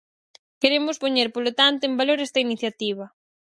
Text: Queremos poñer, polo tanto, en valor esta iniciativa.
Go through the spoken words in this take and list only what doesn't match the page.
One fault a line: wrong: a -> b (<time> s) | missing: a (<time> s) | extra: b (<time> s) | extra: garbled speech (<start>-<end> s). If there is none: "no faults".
no faults